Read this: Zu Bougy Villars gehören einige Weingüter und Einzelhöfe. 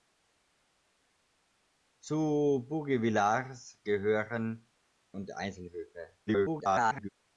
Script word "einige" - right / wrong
wrong